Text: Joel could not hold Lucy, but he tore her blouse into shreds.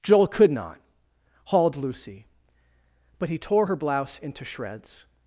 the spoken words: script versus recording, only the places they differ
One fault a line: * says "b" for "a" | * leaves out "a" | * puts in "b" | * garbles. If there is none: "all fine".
* says "hauled" for "hold"